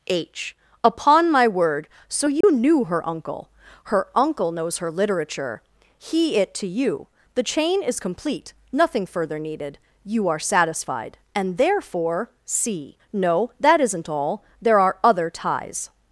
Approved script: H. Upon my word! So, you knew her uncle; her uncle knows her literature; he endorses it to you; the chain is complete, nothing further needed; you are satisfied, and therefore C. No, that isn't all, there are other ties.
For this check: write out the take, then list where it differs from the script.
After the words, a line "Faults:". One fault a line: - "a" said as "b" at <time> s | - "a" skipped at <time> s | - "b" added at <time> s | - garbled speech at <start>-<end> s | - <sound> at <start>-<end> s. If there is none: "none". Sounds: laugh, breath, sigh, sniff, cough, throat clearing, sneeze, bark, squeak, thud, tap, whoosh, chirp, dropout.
H. Upon my word! So, you knew her uncle; her uncle knows her literature; he it to you; the chain is complete, nothing further needed; you are satisfied, and therefore C. No, that isn't all, there are other ties.
Faults:
- dropout at 2.4-2.4 s
- "endorses" skipped at 6.4 s